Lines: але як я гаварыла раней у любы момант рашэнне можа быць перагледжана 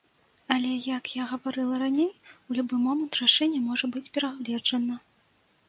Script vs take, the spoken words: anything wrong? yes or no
no